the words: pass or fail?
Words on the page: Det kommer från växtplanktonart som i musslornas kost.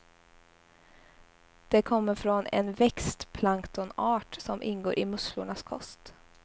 fail